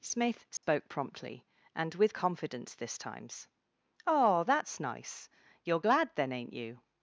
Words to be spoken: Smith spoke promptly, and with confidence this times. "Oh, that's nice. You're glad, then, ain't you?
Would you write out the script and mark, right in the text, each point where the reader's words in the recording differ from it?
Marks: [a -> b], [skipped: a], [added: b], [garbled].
Smith spoke promptly, and with confidence this times. "Oh, that's nice. You're glad, then, ain't you?